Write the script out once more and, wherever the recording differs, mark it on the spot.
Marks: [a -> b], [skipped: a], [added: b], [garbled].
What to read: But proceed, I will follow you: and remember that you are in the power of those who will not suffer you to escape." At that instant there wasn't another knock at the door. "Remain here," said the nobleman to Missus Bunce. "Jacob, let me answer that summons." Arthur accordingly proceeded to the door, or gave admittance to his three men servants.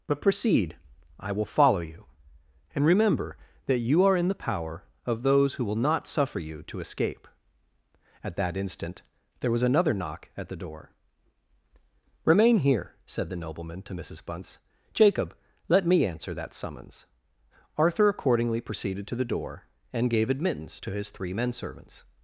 But proceed, I will follow you: and remember that you are in the power of those who will not suffer you to escape." At that instant there [wasn't -> was] another knock at the door. "Remain here," said the nobleman to Missus Bunce. "Jacob, let me answer that summons." Arthur accordingly proceeded to the door, [or -> and] gave admittance to his three men servants.